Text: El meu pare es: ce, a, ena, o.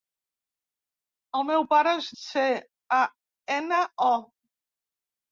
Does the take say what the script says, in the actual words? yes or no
yes